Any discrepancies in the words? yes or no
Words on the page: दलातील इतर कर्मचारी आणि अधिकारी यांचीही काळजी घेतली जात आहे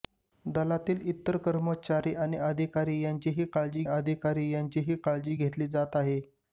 yes